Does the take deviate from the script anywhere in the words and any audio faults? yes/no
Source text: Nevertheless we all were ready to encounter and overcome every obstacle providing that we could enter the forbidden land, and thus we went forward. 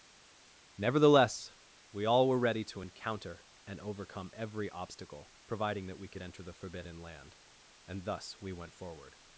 no